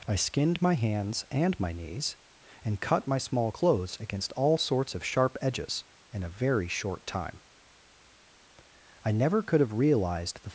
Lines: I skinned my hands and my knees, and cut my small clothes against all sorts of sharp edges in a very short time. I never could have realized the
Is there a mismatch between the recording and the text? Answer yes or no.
no